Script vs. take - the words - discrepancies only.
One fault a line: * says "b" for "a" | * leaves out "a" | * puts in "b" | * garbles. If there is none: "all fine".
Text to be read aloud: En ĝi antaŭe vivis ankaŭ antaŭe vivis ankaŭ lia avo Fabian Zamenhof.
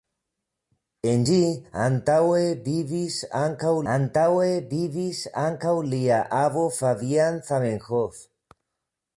all fine